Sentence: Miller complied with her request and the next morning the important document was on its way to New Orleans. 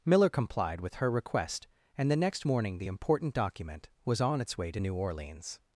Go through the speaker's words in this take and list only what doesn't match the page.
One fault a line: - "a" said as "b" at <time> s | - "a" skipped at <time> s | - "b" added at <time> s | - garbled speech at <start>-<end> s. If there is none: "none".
none